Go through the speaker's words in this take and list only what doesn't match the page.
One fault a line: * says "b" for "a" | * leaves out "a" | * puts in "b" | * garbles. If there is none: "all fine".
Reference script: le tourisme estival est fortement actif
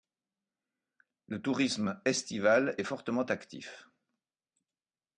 all fine